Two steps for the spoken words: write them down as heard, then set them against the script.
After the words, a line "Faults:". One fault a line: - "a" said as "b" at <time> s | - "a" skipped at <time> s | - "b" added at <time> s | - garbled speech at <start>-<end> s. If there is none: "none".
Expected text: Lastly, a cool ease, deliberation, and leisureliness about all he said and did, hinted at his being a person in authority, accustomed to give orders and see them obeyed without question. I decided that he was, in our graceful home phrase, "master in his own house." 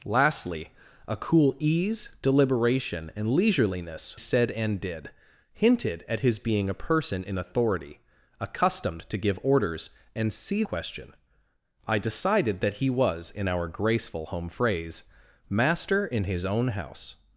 Lastly, a cool ease, deliberation, and leisureliness said and did, hinted at his being a person in authority, accustomed to give orders and see question. I decided that he was, in our graceful home phrase, "master in his own house."
Faults:
- "about all he" skipped at 4.2 s
- "them obeyed without" skipped at 10.6 s